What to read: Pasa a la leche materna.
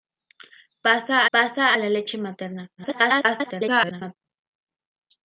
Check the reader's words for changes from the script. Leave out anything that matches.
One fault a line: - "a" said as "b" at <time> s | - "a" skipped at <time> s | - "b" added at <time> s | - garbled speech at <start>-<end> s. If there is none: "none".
- "pasa" added at 1.3 s
- garbled speech at 2.8-4.2 s